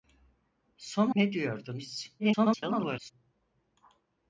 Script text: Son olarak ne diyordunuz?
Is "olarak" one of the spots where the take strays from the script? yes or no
yes